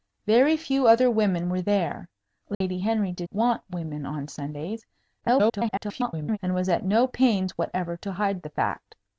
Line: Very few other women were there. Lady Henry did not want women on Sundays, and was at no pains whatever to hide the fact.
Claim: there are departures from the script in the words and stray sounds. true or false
true